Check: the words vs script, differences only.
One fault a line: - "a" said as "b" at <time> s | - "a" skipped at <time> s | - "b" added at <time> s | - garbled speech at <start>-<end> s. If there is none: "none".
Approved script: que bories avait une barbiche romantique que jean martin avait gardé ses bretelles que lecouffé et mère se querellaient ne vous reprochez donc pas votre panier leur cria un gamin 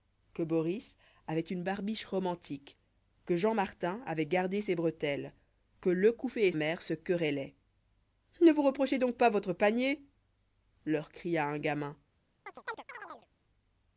none